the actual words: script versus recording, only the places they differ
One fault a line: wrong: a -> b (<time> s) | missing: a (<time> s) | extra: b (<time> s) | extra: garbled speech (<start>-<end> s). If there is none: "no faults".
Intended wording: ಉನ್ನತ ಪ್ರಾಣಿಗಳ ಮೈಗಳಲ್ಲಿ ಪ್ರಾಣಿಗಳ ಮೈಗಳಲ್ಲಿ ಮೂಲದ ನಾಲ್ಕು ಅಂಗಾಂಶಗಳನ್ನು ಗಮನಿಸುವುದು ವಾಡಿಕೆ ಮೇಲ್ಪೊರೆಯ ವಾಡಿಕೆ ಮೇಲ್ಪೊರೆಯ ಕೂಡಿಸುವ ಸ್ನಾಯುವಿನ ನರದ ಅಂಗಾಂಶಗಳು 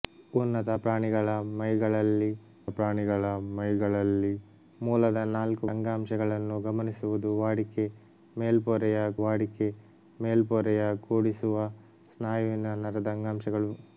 no faults